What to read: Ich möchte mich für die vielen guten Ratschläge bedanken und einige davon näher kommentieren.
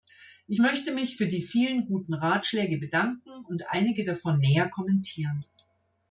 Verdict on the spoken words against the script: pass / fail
pass